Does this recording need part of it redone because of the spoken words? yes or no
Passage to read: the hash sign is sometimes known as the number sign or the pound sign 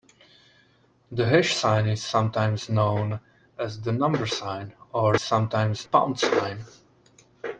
yes